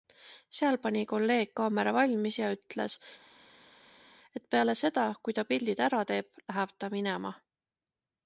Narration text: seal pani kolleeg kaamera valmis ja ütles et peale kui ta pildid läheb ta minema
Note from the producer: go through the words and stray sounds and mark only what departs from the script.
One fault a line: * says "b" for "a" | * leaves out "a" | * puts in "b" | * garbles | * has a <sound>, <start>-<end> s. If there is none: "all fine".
* puts in "seda"
* puts in "ära teeb"